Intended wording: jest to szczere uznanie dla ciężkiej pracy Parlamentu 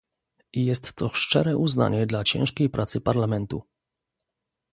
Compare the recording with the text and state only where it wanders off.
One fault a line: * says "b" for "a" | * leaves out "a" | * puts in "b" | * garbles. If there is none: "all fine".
all fine